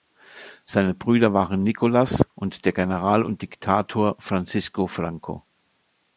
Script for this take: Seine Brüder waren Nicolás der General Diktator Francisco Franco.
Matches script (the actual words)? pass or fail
fail